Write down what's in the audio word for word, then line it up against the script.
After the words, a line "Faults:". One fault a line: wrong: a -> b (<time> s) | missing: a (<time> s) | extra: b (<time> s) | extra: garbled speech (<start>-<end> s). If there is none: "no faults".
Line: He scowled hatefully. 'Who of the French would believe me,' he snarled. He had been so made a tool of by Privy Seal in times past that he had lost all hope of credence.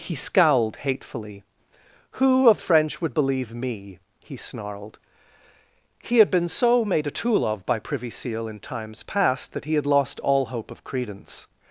He scowled hatefully. 'Who of French would believe me,' he snarled. He had been so made a tool of by Privy Seal in times past that he had lost all hope of credence.
Faults:
missing: the (2.6 s)